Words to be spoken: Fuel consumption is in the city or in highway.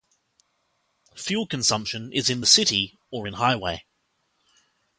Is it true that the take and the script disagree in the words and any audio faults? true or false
false